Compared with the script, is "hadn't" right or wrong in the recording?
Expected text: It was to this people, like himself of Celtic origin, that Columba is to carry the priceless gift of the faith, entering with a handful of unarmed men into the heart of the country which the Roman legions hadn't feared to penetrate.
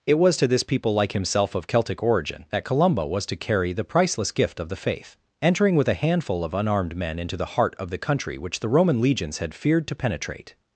wrong